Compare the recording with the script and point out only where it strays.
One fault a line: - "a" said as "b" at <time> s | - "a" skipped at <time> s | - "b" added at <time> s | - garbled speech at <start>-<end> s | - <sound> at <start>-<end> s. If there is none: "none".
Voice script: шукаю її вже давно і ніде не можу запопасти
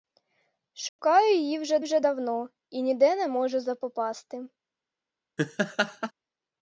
- dropout at 0.9-1.0 s
- "вже" added at 1.8 s
- laugh at 5.4-6.1 s